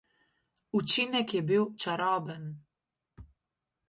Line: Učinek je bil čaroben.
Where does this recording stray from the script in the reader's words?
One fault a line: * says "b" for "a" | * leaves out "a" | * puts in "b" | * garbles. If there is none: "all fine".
all fine